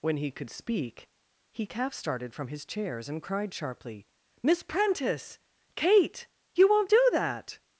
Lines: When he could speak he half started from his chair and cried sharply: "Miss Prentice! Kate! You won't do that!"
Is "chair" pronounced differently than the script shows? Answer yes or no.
yes